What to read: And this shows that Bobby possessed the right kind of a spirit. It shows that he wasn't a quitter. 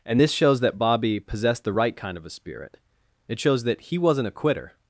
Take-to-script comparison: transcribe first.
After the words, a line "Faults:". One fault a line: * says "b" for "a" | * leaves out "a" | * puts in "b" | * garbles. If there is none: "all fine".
And this shows that Bobby possessed the right kind of a spirit. It shows that he wasn't a quitter.
Faults:
all fine